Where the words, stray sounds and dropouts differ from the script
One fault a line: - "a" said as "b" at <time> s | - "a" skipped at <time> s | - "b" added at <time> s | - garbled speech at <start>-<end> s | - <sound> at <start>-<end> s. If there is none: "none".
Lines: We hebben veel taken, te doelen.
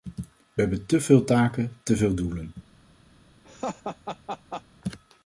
- "te" added at 0.8 s
- "veel" added at 2.0 s
- laugh at 3.4-4.6 s